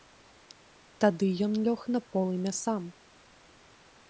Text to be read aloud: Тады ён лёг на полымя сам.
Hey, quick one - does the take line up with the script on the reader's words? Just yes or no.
yes